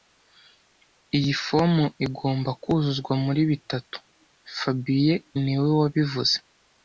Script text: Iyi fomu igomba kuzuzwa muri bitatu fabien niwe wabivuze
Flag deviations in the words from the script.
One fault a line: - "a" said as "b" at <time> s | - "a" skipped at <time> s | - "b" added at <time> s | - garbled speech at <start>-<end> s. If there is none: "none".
none